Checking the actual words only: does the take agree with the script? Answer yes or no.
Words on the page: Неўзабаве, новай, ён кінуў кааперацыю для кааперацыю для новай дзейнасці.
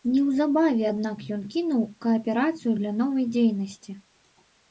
no